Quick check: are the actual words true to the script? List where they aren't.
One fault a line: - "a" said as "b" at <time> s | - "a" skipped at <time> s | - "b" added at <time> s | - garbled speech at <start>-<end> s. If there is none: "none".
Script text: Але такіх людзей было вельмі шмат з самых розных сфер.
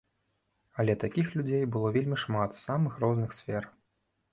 none